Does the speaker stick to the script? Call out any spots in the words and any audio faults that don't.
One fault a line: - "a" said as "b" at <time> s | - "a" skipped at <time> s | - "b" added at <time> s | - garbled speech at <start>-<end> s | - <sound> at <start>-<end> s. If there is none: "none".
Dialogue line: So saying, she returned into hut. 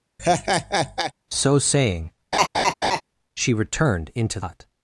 - laugh at 0.2-1.1 s
- laugh at 2.3-3.0 s